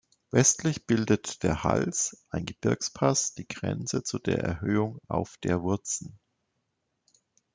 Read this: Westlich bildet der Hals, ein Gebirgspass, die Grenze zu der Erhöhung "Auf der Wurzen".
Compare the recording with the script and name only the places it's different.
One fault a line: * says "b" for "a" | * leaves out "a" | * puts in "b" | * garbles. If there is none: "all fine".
all fine